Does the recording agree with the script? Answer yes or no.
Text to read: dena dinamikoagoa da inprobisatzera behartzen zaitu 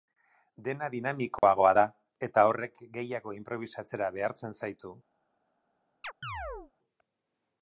no